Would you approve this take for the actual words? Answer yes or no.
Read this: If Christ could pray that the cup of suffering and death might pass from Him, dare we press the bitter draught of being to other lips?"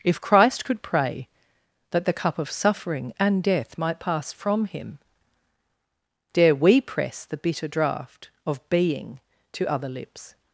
yes